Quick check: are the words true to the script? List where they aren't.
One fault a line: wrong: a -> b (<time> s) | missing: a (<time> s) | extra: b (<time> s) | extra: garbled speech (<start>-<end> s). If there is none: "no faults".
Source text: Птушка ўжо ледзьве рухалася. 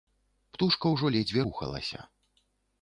no faults